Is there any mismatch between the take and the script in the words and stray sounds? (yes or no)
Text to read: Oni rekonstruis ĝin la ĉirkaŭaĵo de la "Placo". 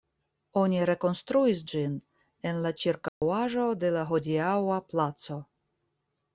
yes